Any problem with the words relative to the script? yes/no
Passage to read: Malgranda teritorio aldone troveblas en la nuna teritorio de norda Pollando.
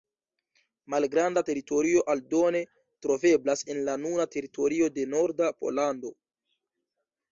no